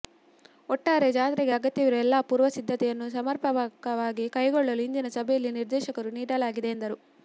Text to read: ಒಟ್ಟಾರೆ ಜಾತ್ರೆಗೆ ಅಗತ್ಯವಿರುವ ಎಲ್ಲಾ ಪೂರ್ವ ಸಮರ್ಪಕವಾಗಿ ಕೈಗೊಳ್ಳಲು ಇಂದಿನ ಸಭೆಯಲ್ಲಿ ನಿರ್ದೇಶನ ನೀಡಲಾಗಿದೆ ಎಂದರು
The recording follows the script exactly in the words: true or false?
false